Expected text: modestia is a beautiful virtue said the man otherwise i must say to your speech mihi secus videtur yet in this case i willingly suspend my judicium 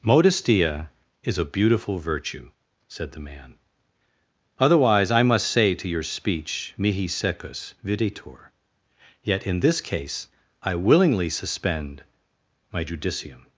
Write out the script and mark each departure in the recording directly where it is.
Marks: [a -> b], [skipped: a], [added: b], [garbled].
modestia is a beautiful virtue said the man otherwise i must say to your speech mihi secus videtur yet in this case i willingly suspend my judicium